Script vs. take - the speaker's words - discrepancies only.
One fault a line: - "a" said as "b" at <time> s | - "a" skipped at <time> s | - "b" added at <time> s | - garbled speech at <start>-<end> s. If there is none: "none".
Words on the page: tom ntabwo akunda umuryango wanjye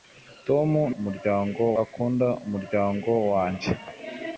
- "ntabwo" said as "umuryango" at 1.0 s